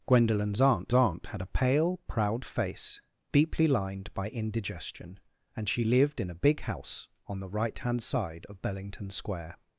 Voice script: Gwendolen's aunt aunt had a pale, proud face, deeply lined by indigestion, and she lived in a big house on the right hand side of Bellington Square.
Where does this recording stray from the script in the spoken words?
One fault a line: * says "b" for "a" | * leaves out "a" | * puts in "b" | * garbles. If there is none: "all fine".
all fine